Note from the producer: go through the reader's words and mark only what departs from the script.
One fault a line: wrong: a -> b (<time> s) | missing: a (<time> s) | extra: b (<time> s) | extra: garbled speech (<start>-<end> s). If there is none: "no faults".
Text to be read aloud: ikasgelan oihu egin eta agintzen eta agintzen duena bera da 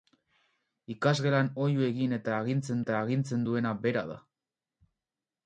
no faults